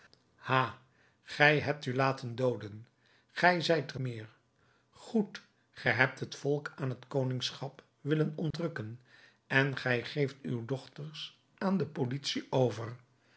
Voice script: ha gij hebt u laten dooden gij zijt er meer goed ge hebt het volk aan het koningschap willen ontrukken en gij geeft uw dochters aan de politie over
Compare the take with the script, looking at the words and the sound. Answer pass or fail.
fail